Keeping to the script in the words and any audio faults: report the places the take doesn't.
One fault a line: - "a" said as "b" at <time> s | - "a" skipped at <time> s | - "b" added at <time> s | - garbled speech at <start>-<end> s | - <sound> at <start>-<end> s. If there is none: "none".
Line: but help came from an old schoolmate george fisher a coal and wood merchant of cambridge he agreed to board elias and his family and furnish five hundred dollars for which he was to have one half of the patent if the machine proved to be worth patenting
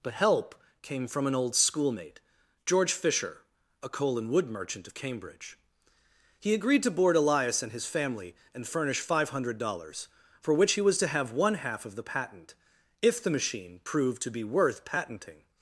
none